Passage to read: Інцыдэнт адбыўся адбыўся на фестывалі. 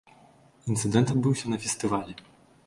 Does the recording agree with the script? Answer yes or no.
no